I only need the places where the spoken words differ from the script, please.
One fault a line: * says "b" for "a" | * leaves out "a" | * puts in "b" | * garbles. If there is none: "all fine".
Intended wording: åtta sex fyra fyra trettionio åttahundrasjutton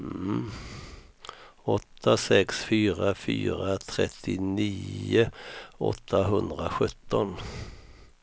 all fine